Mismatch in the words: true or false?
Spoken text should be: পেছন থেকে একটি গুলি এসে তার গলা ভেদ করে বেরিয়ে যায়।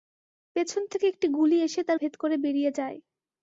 true